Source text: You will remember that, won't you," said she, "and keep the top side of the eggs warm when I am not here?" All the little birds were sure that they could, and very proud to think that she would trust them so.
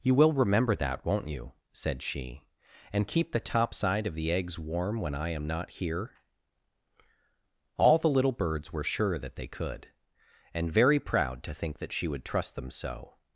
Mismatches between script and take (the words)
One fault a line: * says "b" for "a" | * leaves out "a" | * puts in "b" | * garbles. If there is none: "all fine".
all fine